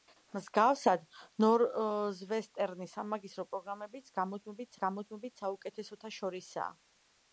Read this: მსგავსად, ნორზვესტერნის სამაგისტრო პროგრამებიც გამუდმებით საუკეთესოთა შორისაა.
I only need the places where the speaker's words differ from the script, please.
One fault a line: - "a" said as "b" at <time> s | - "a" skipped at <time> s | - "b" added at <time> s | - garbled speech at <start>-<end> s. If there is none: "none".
- "გამუდმებით" added at 4.8 s